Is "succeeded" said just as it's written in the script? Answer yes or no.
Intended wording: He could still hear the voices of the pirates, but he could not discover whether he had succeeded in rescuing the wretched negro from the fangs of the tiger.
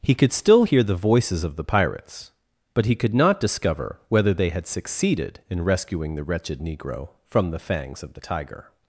yes